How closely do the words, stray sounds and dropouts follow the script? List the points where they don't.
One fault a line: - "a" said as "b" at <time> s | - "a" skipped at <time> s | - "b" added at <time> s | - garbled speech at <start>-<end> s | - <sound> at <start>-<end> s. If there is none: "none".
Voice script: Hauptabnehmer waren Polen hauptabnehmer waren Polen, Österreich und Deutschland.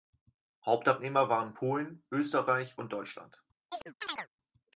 - "hauptabnehmer waren Polen" skipped at 2.0 s
- chirp at 3.7-4.3 s